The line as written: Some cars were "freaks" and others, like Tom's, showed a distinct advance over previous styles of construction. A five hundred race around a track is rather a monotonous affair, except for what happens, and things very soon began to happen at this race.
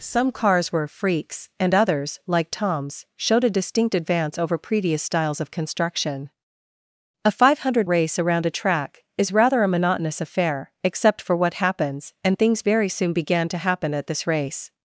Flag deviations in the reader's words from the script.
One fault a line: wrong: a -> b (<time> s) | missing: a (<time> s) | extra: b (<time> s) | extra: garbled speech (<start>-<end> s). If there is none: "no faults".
no faults